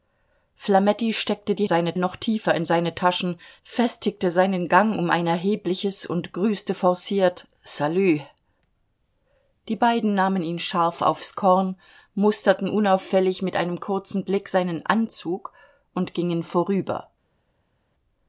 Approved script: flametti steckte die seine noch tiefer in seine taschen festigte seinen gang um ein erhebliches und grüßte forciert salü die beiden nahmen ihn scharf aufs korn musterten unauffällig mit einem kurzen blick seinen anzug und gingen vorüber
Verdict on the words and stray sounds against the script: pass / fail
pass